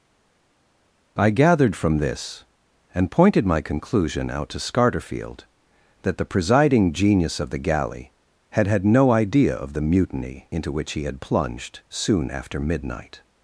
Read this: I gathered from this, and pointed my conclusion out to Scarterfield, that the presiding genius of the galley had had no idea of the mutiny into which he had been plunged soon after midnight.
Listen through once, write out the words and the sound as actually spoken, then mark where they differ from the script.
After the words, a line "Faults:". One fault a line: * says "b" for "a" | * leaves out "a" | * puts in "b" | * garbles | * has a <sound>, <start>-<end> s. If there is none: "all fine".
I gathered from this, and pointed my conclusion out to Scarterfield, that the presiding genius of the galley had had no idea of the mutiny into which he had plunged soon after midnight.
Faults:
* leaves out "been"